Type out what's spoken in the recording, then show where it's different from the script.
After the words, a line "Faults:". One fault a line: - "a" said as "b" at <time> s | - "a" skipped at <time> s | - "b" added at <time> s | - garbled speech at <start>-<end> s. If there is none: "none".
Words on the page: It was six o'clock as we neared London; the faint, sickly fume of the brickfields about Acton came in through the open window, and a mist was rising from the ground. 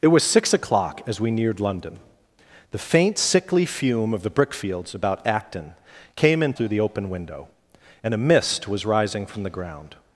It was six o'clock as we neared London; the faint, sickly fume of the brickfields about Acton came in through the open window, and a mist was rising from the ground.
Faults:
none